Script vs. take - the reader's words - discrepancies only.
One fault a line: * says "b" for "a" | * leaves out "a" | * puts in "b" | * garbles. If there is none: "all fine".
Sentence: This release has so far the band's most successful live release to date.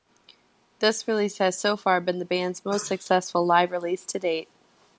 * puts in "been"